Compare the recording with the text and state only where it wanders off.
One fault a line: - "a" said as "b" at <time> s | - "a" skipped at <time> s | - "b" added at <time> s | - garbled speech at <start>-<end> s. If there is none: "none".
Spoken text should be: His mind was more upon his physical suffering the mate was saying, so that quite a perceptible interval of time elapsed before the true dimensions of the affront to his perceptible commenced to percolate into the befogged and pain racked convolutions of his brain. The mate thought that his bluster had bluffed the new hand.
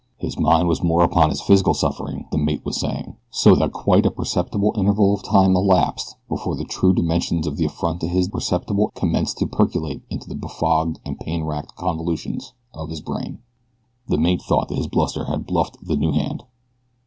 none